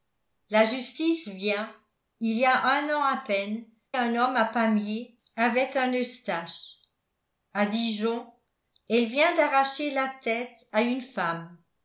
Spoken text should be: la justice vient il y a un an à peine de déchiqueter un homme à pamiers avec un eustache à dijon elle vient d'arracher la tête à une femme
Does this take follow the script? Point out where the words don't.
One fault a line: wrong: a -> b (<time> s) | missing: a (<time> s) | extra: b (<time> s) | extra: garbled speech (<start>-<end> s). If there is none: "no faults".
missing: de déchiqueter (3.6 s)